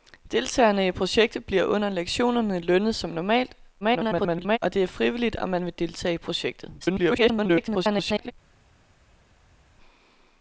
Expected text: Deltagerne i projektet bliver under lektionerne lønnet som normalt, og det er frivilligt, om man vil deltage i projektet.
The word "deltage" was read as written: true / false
true